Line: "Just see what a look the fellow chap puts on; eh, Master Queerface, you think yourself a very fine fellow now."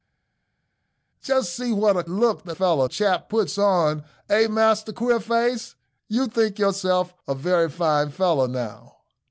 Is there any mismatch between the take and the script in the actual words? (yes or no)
no